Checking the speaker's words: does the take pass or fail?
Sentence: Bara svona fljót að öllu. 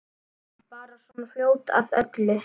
pass